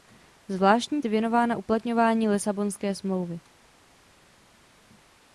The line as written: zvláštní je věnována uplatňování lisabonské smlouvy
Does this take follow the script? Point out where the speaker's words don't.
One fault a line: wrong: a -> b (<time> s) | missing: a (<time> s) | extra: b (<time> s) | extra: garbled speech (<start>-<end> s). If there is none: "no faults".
no faults